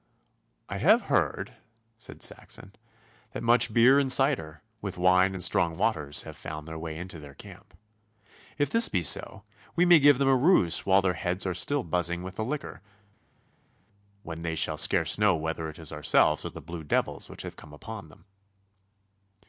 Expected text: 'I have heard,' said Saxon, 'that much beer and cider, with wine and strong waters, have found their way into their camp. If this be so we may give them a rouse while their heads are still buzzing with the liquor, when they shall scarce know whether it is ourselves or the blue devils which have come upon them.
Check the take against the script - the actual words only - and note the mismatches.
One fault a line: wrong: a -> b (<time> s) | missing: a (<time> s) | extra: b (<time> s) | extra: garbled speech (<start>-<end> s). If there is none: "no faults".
no faults